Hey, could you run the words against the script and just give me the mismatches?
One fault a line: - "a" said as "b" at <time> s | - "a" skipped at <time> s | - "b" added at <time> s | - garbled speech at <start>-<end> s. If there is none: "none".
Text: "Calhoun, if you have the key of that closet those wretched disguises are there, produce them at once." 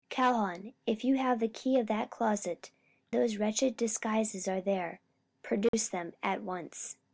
none